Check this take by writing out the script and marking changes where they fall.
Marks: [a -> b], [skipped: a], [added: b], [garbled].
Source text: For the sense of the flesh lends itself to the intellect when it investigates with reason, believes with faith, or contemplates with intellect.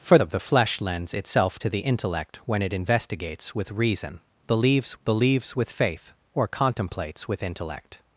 For [skipped: the sense] of the flesh lends itself to the intellect when it investigates with reason, believes [added: believes] with faith, or contemplates with intellect.